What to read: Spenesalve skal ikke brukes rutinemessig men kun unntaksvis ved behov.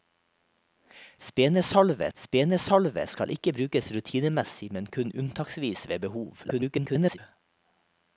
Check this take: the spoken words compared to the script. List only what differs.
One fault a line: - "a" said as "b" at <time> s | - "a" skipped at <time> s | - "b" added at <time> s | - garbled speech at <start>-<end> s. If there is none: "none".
- "spenesalve" added at 2.1 s
- garbled speech at 6.4-7.2 s